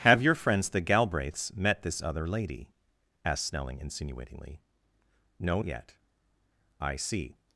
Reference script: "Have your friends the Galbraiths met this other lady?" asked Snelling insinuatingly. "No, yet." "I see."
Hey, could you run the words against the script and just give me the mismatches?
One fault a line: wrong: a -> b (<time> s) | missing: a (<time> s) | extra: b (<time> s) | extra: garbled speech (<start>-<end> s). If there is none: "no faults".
no faults